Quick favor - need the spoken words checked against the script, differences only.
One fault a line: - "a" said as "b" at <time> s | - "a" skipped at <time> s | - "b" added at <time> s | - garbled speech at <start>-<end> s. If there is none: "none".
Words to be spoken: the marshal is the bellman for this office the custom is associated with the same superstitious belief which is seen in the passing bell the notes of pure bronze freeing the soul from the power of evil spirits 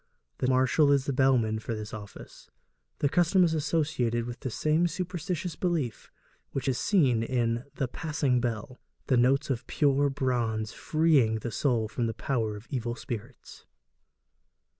none